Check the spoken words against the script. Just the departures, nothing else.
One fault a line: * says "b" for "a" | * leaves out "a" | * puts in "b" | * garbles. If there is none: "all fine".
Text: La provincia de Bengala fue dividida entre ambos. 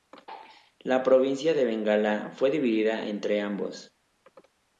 all fine